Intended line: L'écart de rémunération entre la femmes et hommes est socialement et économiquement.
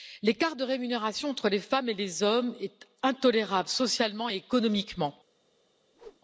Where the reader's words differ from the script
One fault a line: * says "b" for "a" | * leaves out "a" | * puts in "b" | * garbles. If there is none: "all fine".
* says "les" for "la"
* puts in "les"
* puts in "intolérable"